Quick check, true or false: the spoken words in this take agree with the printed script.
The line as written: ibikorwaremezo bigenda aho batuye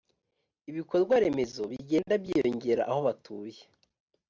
false